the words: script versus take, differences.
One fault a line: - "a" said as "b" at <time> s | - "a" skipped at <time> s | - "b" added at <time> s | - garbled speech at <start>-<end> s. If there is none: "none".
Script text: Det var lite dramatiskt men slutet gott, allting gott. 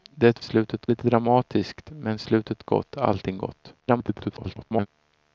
- "var" said as "slutet" at 0.4 s
- garbled speech at 3.8-4.9 s